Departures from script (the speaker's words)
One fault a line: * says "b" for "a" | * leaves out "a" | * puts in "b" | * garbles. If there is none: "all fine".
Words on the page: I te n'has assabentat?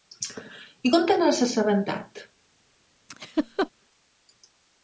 * puts in "com"